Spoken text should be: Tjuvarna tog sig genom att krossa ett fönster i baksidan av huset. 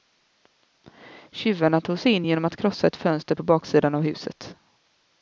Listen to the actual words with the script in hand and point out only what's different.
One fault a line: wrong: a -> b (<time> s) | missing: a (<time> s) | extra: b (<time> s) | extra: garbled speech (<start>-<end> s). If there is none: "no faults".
extra: in (2.1 s)
wrong: i -> på (3.3 s)